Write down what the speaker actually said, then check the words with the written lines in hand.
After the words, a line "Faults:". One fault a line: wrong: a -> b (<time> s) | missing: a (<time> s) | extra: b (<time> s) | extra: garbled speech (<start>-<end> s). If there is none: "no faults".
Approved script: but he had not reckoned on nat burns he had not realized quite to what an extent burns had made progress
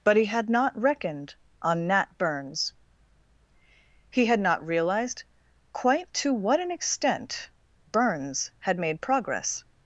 but he had not reckoned on nat burns he had not realized quite to what an extent burns had made progress
Faults:
no faults